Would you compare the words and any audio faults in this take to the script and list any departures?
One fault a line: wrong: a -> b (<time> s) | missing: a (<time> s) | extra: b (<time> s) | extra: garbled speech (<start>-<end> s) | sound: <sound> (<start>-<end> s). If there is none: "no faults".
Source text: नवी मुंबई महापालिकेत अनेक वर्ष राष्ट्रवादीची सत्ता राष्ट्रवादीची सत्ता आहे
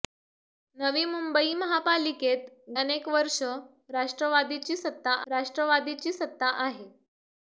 no faults